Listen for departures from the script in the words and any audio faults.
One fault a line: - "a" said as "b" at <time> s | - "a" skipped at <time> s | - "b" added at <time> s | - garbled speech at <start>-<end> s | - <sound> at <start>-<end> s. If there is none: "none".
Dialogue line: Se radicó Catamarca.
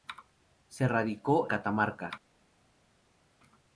none